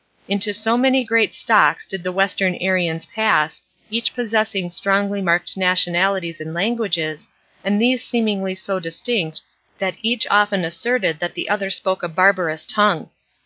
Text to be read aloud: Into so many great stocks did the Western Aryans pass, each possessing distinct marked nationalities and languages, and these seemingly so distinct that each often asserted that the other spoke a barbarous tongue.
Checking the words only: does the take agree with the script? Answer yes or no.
no